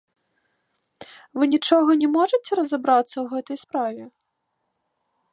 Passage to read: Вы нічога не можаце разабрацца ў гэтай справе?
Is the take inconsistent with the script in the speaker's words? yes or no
no